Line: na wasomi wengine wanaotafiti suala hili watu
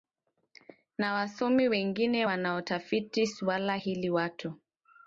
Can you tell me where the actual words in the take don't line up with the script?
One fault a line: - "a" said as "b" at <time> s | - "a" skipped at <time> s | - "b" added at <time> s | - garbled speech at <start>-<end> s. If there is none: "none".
none